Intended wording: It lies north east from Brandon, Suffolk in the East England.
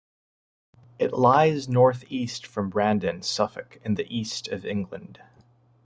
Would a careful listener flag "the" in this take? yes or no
no